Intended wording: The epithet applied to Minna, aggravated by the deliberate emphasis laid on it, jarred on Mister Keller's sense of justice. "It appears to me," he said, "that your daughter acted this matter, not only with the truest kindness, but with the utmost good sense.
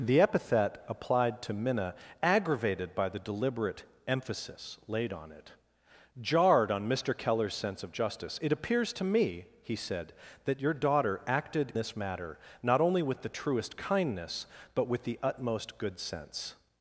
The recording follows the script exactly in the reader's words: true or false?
true